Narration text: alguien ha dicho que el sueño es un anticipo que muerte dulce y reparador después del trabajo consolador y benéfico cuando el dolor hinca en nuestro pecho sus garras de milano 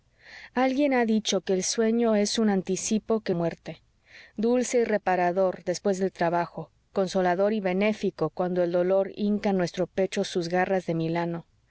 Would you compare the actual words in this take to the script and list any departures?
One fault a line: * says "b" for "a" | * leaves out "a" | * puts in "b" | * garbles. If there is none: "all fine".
all fine